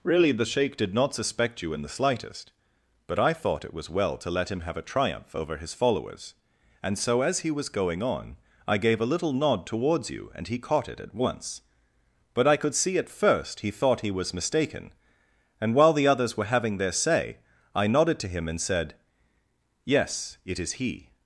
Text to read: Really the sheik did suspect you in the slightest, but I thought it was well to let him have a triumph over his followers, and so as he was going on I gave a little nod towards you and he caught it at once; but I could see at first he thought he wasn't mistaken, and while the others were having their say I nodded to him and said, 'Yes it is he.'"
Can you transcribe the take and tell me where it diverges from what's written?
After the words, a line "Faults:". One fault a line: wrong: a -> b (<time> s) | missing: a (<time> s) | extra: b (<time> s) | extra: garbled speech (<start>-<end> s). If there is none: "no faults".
Really the sheik did not suspect you in the slightest, but I thought it was well to let him have a triumph over his followers, and so as he was going on I gave a little nod towards you and he caught it at once; but I could see at first he thought he was mistaken, and while the others were having their say I nodded to him and said, 'Yes it is he.'"
Faults:
extra: not (0.9 s)
wrong: wasn't -> was (14.1 s)